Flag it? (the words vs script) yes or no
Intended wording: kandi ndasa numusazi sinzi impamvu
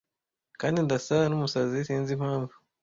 no